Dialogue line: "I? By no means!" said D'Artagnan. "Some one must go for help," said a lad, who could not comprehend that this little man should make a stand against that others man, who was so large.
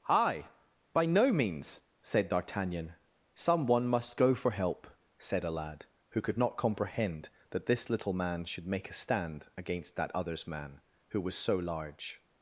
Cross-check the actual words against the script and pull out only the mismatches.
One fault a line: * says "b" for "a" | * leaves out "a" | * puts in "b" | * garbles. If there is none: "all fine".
all fine